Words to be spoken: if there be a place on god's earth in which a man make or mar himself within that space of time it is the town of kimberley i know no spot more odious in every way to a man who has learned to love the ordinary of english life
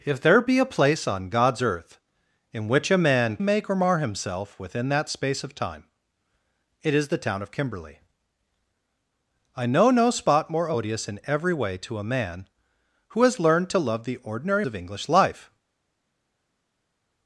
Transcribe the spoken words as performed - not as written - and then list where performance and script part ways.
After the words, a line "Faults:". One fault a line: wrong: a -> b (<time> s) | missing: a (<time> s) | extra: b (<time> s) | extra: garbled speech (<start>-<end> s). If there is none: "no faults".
if there be a place on god's earth in which a man make or mar himself within that space of time it is the town of kimberley i know no spot more odious in every way to a man who has learned to love the ordinary of english life
Faults:
no faults